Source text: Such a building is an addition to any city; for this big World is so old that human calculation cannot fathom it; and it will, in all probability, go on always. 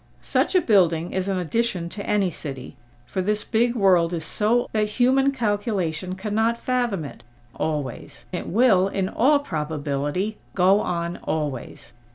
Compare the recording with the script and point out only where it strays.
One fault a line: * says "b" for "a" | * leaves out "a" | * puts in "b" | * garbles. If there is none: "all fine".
* leaves out "old"
* says "always" for "and"